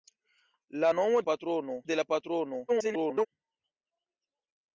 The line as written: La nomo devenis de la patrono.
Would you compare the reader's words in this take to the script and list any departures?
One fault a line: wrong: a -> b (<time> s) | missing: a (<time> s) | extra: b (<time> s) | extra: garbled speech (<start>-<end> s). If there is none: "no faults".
wrong: devenis -> patrono (1.3 s)
extra: garbled speech (2.7-3.3 s)